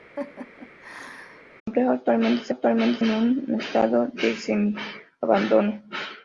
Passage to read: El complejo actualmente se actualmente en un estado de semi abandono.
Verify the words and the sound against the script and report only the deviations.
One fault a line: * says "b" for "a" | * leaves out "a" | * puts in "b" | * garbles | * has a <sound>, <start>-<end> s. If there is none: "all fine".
* has a laugh, 0.2-1.4 s